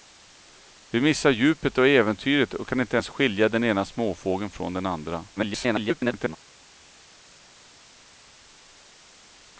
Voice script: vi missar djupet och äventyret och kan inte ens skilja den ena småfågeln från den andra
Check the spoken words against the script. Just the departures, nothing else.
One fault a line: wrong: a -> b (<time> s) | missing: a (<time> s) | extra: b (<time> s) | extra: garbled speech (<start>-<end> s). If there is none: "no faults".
extra: garbled speech (5.4-6.4 s)